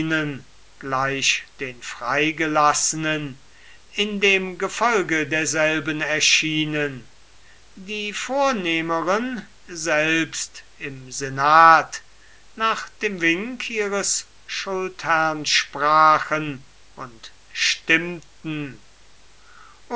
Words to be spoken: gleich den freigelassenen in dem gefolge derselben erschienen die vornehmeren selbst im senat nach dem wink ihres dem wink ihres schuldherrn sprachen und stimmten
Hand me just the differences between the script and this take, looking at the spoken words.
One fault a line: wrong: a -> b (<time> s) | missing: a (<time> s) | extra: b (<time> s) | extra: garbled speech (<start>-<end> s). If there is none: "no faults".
missing: dem wink ihres (14.3 s)